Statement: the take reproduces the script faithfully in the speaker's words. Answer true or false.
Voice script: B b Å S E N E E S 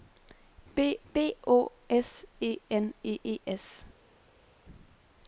true